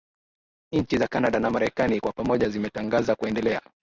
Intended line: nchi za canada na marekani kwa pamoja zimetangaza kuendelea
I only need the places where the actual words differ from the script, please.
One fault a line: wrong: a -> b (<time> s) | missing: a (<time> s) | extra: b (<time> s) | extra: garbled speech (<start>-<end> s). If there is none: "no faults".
no faults